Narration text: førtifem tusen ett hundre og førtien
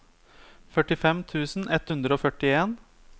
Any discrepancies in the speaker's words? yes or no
no